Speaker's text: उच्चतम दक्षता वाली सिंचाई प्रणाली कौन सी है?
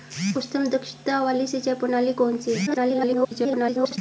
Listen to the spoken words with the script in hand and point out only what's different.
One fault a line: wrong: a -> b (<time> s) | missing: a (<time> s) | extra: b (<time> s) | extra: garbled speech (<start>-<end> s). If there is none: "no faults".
extra: garbled speech (2.7-4.0 s)